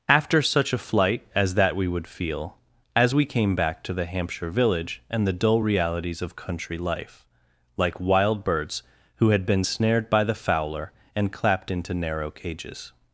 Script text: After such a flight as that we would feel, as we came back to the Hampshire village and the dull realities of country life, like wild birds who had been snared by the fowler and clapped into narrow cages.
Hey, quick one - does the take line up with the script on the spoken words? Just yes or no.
yes